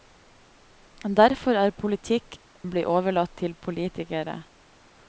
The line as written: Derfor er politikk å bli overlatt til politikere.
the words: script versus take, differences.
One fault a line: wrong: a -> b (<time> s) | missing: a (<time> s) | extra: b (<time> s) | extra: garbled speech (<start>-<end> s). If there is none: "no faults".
no faults